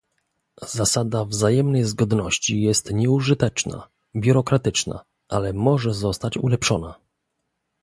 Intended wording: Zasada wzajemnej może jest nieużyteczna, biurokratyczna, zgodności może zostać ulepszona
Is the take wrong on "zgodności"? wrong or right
wrong